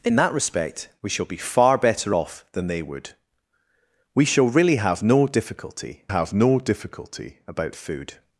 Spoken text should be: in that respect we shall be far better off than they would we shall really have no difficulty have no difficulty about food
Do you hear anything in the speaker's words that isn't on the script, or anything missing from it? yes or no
no